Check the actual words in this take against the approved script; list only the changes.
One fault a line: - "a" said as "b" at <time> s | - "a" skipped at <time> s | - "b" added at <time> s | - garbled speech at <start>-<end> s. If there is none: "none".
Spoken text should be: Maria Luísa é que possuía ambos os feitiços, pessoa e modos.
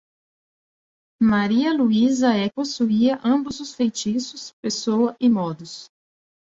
- "que" skipped at 2.5 s